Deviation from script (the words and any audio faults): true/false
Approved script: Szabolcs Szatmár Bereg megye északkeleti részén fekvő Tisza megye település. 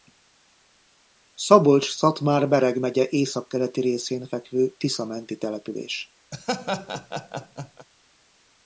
true